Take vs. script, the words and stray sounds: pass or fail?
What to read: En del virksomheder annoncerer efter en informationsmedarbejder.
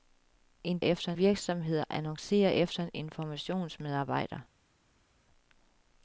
fail